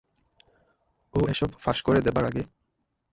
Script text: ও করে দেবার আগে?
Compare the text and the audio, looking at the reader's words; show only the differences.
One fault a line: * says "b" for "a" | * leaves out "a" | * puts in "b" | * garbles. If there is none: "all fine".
* puts in "এসব ফাঁস"